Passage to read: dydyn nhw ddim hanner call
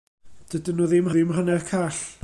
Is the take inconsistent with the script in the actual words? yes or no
yes